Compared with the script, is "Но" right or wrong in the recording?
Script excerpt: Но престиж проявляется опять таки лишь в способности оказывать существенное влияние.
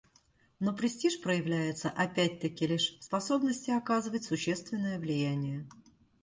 right